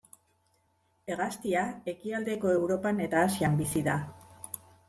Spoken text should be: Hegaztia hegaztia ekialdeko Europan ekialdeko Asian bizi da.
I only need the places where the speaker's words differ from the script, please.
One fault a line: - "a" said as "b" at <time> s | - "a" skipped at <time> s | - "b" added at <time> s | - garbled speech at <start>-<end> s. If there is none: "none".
- "hegaztia" skipped at 1.7 s
- "ekialdeko" said as "eta" at 3.1 s